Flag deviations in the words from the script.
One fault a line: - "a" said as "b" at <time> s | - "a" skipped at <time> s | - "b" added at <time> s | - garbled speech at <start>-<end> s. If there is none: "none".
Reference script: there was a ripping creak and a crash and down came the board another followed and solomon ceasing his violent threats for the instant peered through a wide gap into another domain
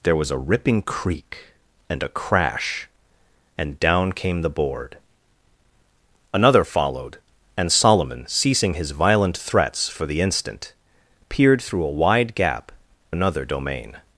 - "into" skipped at 12.7 s